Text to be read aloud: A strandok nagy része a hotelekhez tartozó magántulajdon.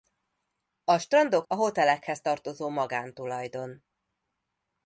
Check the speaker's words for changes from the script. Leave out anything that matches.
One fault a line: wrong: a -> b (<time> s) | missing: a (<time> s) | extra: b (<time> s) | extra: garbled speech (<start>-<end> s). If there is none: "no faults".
missing: nagy része (1.5 s)